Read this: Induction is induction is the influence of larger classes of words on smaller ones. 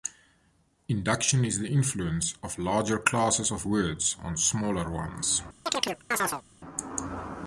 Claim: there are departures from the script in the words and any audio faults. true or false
true